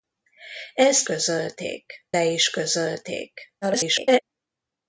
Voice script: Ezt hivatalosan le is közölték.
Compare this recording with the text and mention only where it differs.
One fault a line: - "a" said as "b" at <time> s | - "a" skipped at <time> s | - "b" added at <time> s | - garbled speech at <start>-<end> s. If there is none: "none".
- "hivatalosan" said as "közölték" at 1.0 s
- garbled speech at 3.6-4.2 s